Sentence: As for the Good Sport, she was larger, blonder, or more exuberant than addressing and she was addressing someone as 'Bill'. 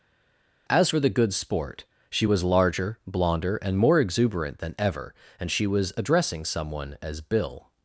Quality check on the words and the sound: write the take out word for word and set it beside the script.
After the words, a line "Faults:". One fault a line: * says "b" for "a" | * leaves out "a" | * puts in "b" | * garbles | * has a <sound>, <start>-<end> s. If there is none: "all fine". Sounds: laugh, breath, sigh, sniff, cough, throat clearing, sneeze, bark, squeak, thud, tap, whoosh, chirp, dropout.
As for the Good Sport, she was larger, blonder, and more exuberant than ever and she was addressing someone as 'Bill'.
Faults:
* says "and" for "or"
* says "ever" for "addressing"